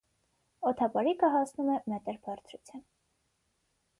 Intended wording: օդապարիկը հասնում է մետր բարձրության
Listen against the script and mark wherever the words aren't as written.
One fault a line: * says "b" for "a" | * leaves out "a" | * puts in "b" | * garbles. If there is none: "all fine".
all fine